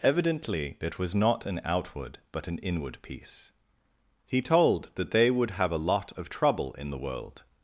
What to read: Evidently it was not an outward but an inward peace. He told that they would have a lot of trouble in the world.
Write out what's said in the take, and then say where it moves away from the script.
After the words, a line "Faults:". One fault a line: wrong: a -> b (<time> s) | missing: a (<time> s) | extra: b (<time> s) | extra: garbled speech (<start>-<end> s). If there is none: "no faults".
Evidently it was not an outward but an inward peace. He told that they would have a lot of trouble in the world.
Faults:
no faults